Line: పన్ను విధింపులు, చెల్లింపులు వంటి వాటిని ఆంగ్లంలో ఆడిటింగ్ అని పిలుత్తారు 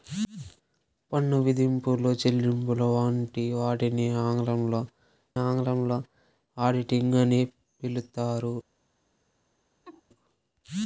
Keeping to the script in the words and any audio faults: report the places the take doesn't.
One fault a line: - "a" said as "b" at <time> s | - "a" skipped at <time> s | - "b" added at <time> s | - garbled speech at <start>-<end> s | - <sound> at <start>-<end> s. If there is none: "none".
- "ఆంగ్లంలో" added at 5.4 s
- laugh at 9.8-10.0 s